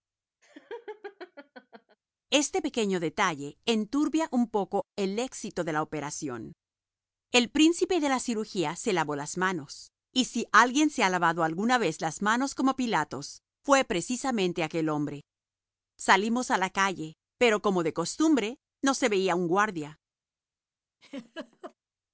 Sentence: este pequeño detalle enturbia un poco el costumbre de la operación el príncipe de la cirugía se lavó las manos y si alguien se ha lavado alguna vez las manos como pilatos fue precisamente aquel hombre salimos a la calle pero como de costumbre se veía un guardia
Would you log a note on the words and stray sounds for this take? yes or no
yes